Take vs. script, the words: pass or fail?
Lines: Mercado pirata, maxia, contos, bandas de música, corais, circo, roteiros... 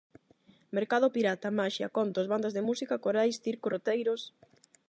pass